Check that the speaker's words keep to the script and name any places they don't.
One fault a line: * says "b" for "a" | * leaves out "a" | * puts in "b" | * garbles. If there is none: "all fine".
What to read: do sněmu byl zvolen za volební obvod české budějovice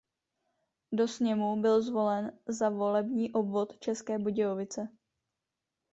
all fine